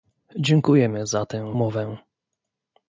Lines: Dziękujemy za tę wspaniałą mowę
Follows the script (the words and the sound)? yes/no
no